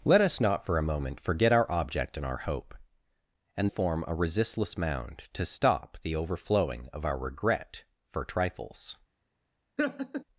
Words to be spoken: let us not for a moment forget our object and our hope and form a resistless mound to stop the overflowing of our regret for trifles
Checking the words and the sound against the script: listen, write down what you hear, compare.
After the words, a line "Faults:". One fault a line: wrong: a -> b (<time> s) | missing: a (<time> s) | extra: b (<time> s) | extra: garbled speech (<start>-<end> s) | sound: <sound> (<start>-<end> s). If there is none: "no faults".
let us not for a moment forget our object and our hope and form a resistless mound to stop the overflowing of our regret for trifles
Faults:
sound: laugh (9.8-10.2 s)